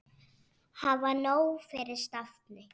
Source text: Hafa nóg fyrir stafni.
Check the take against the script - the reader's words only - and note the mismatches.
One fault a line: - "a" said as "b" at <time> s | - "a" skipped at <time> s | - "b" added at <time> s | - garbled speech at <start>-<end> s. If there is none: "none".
none